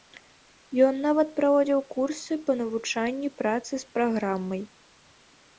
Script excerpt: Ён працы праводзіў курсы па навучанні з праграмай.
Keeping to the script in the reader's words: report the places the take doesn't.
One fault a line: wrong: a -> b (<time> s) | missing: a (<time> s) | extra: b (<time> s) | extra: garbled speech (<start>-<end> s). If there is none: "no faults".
wrong: працы -> нават (1.1 s)
extra: працы (3.4 s)